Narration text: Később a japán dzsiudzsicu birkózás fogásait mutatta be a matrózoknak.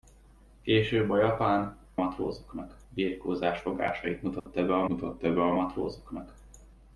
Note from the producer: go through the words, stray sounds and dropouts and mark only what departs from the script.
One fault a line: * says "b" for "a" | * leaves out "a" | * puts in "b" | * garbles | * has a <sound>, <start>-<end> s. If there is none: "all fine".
* says "matrózoknak" for "dzsiudzsicu"
* has a dropout, 4.4-4.5 s
* puts in "mutatta be a"